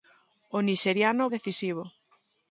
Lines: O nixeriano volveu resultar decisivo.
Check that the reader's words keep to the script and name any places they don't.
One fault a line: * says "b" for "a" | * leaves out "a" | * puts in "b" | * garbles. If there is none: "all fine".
* leaves out "volveu resultar"